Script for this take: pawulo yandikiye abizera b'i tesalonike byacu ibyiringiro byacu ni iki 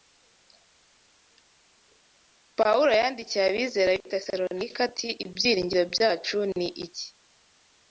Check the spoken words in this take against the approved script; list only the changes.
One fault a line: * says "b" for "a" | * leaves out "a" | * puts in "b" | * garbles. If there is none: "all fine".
* says "ati" for "byacu"